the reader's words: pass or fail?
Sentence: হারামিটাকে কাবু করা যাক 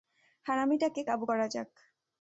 pass